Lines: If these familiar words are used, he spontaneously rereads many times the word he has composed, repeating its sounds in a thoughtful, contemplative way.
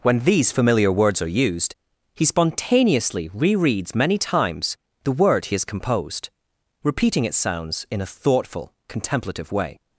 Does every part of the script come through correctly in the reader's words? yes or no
no